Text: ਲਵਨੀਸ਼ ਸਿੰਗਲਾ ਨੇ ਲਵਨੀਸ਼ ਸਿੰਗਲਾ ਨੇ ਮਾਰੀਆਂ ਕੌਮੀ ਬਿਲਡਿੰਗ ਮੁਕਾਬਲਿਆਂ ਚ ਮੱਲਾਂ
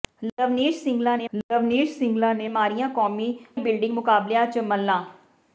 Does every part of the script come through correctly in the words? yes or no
yes